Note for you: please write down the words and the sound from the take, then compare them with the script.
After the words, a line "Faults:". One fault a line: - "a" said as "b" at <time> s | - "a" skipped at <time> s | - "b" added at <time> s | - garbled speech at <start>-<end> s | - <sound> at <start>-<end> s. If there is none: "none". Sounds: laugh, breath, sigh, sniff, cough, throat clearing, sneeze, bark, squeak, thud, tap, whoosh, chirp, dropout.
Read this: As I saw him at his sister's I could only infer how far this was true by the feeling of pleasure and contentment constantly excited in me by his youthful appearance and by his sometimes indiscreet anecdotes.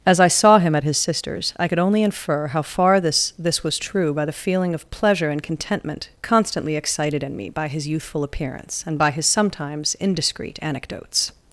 As I saw him at his sister's I could only infer how far this this was true by the feeling of pleasure and contentment constantly excited in me by his youthful appearance and by his sometimes indiscreet anecdotes.
Faults:
- "this" added at 3.4 s